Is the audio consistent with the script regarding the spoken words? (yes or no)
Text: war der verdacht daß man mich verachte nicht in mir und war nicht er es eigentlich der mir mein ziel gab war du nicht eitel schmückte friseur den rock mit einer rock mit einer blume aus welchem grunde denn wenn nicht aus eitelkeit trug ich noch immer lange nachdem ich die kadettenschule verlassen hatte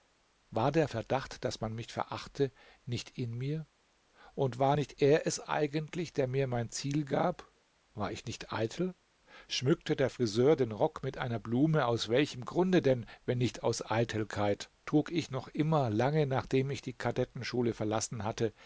no